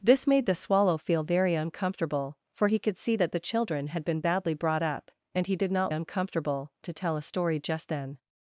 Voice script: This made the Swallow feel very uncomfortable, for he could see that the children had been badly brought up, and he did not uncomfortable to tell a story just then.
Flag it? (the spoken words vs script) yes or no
no